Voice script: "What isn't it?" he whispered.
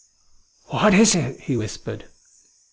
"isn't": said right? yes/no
no